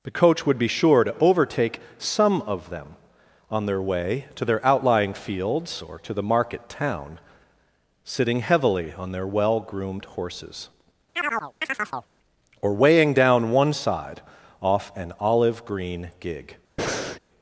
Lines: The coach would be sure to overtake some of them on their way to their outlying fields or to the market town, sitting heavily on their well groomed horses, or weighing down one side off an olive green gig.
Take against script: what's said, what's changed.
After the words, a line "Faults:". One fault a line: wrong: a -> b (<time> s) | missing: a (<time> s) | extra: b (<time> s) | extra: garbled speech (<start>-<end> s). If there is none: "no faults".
The coach would be sure to overtake some of them on their way to their outlying fields or to the market town, sitting heavily on their well groomed horses, or weighing down one side off an olive green gig.
Faults:
no faults